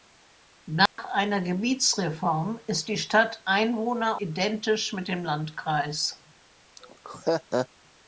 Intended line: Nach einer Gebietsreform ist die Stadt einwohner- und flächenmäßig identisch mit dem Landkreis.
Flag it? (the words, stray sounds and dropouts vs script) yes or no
yes